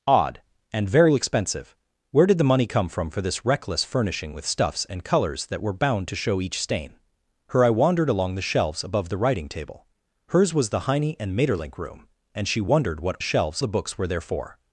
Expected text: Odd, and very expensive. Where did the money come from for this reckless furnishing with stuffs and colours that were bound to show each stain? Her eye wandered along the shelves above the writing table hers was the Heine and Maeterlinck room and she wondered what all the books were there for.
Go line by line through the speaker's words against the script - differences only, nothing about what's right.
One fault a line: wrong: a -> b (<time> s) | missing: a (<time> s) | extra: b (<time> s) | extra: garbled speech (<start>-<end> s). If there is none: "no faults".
wrong: all -> shelves (13.2 s)